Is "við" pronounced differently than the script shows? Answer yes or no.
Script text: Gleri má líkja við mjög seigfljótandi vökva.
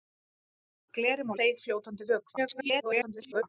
yes